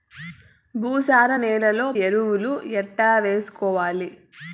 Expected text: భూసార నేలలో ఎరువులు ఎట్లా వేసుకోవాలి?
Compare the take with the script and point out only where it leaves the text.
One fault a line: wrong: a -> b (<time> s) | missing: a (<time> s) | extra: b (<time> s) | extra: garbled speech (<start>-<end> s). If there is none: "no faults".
no faults